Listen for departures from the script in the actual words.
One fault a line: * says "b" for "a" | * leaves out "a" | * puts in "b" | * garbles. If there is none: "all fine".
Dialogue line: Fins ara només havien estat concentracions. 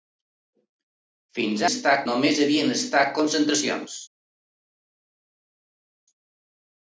* says "estat" for "ara"